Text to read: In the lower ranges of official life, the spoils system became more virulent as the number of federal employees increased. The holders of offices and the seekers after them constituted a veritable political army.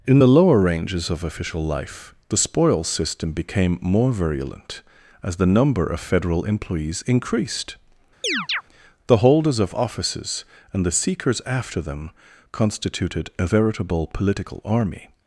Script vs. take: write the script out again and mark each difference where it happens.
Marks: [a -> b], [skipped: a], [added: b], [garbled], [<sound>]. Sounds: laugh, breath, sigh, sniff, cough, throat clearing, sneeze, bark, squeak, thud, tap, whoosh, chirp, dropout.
In the lower ranges of official life, the spoils system became more virulent as the number of federal employees increased. [chirp] The holders of offices and the seekers after them constituted a veritable political army.